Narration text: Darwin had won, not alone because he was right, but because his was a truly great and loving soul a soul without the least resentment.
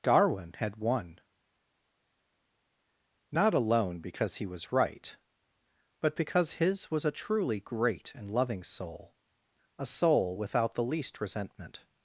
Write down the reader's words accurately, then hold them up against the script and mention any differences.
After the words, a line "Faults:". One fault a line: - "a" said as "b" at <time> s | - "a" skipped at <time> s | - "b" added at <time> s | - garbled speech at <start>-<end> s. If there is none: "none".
Darwin had won, not alone because he was right, but because his was a truly great and loving soul a soul without the least resentment.
Faults:
none